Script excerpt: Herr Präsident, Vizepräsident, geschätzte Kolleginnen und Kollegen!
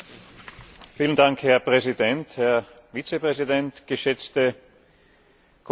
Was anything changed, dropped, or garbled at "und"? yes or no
no